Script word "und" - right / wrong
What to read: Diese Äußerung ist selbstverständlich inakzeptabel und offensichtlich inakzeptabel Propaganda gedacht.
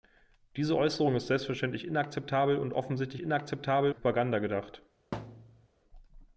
right